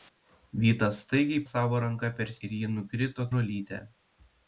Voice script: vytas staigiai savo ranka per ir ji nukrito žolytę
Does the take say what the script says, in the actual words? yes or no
yes